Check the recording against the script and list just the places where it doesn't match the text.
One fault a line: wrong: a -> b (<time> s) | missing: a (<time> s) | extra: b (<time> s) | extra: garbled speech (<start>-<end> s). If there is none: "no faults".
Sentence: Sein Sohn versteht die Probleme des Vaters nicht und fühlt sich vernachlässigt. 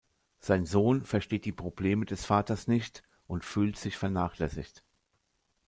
no faults